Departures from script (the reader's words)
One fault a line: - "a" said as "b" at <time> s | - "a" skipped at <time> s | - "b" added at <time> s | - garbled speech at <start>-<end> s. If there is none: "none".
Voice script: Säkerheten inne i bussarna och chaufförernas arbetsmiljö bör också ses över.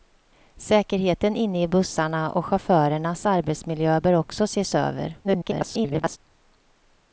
- garbled speech at 5.2-6.2 s